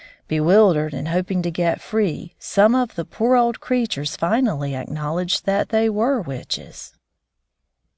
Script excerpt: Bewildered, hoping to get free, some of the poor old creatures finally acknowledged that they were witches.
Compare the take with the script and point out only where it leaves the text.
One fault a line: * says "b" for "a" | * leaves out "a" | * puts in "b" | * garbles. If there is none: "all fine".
* puts in "and"